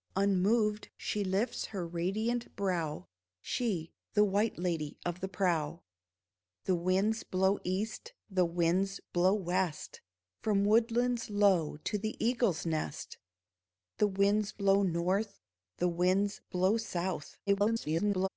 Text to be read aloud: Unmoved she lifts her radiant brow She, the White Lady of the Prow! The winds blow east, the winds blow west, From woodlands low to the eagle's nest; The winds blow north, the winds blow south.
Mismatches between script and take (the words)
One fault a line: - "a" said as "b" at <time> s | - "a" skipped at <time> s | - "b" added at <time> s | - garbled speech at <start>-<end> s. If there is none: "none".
- garbled speech at 17.5-18.3 s